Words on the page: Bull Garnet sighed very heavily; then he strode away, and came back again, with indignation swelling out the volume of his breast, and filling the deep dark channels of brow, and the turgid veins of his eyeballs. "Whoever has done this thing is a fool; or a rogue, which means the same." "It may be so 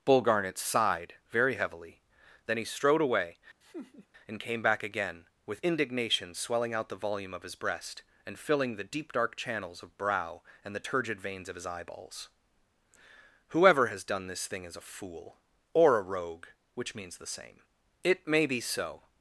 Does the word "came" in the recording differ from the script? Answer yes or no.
no